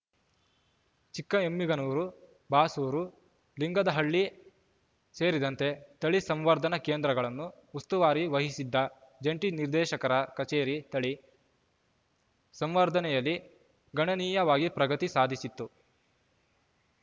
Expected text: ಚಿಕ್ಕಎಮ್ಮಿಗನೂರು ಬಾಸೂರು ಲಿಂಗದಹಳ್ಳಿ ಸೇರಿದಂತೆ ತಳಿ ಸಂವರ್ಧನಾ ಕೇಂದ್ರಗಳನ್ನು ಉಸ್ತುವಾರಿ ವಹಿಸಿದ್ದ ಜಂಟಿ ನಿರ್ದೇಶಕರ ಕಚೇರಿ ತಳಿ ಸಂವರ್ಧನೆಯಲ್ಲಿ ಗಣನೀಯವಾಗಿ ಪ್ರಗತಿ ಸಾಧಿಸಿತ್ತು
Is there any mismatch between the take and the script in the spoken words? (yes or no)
no